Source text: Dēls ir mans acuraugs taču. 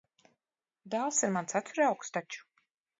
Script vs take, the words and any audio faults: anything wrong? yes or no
no